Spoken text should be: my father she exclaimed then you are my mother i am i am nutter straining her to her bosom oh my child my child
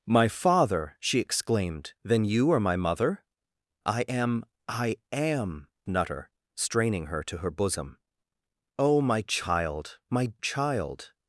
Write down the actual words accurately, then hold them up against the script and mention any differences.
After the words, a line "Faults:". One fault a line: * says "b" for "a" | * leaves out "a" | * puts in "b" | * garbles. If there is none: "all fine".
my father she exclaimed then you are my mother i am i am nutter straining her to her bosom oh my child my child
Faults:
all fine